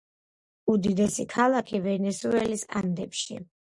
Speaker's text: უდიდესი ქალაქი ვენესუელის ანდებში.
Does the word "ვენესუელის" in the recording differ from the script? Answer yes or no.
no